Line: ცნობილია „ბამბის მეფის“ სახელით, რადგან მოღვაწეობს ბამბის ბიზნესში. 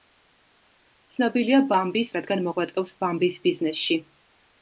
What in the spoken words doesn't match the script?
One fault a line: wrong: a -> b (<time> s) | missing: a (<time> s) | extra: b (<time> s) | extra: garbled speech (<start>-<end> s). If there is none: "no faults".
missing: მეფის სახელით (2.1 s)